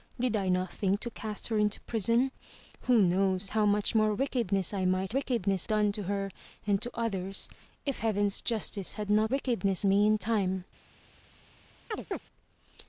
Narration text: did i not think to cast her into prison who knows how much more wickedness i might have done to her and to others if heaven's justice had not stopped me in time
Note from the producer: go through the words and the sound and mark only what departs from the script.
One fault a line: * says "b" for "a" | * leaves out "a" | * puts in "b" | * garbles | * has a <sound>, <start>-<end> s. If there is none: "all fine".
* says "wickedness" for "have"
* says "wickedness" for "stopped"
* has a chirp, 11.9-12.2 s